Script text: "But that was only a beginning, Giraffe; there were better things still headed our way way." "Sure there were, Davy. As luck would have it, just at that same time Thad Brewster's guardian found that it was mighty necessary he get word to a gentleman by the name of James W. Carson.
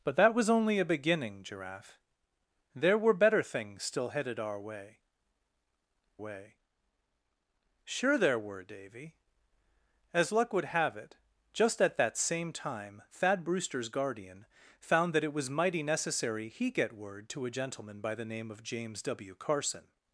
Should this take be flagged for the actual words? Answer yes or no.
no